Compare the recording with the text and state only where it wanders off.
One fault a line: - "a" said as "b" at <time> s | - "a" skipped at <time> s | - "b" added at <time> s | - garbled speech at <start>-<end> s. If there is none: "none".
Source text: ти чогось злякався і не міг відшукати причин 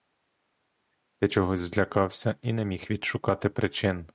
none